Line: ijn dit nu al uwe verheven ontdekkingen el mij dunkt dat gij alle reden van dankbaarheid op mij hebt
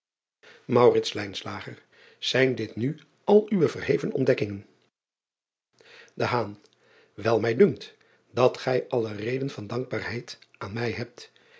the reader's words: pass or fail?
fail